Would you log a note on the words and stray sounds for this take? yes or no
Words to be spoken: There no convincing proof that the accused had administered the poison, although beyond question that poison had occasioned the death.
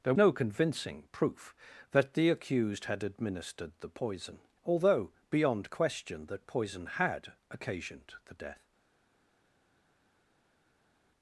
no